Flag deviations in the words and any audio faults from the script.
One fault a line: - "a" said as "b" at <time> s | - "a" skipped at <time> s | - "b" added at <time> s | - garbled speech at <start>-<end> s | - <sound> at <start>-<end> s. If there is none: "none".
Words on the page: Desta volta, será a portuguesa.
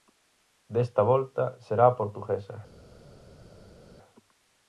none